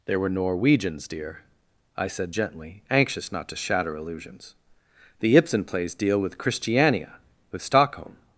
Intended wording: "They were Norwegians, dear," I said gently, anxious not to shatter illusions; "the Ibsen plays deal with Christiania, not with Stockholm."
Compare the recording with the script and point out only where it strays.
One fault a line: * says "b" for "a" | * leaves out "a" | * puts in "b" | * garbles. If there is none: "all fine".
* leaves out "not"